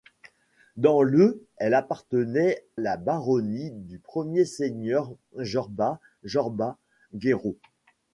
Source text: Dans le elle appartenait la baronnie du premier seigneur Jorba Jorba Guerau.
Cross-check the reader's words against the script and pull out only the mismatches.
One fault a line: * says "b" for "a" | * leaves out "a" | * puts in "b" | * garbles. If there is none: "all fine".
all fine